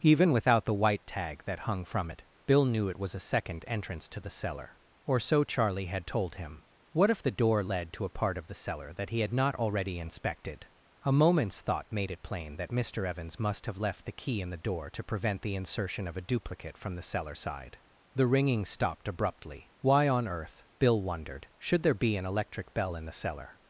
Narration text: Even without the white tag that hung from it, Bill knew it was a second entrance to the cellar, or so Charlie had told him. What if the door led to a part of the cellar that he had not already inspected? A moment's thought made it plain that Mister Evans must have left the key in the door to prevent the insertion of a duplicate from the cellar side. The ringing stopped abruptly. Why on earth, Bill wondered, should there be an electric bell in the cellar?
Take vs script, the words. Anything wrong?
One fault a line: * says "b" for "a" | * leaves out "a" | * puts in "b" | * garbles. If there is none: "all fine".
all fine